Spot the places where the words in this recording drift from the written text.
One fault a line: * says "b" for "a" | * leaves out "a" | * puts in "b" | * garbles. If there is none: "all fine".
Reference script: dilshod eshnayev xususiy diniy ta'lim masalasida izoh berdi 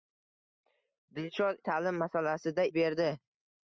* leaves out "eshnayev xususiy diniy"
* leaves out "izoh"